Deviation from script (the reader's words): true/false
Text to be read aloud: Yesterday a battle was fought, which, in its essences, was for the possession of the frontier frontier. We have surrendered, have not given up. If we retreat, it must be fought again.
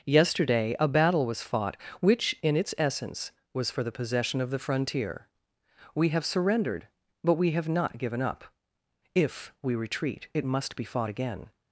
true